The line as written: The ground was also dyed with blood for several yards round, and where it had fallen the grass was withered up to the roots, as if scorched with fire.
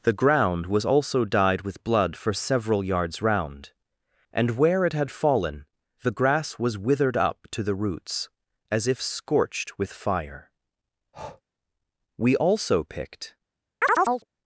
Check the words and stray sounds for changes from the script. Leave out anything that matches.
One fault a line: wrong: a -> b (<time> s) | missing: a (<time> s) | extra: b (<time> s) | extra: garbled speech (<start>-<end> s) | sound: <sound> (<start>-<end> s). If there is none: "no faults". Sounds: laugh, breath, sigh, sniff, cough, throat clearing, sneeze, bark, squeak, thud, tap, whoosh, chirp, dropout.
sound: breath (11.1-11.4 s)
extra: We also picked (12.2 s)
sound: chirp (13.8-14.2 s)